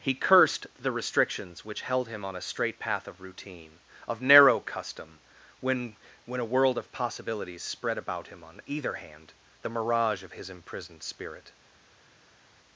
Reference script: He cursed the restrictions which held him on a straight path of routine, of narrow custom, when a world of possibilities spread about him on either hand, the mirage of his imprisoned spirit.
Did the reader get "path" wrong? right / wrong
right